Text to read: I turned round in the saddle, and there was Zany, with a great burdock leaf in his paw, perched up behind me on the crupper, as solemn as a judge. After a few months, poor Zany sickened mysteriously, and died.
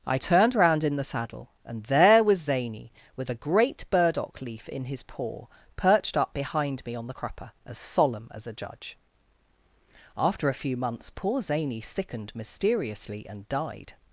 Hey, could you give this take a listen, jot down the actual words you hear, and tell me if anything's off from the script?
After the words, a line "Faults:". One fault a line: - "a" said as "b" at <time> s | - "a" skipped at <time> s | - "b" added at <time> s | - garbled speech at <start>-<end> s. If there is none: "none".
I turned round in the saddle, and there was Zany, with a great burdock leaf in his paw, perched up behind me on the crupper, as solemn as a judge. After a few months, poor Zany sickened mysteriously, and died.
Faults:
none